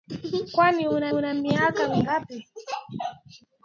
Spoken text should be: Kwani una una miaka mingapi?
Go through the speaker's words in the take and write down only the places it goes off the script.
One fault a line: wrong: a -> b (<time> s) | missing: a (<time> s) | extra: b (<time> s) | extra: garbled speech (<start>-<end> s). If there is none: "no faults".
no faults